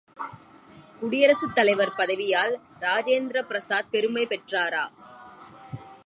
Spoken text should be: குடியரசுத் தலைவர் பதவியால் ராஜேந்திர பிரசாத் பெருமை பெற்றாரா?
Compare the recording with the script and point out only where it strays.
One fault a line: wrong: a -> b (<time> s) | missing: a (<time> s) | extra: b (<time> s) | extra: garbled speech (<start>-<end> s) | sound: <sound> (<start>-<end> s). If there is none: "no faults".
no faults